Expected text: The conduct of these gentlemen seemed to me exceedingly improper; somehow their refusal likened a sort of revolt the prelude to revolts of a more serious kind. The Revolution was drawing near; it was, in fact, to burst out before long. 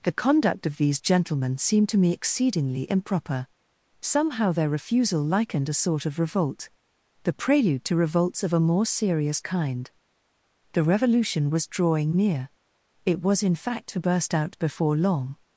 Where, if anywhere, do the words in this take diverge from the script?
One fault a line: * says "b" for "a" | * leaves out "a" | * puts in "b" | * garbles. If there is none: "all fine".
all fine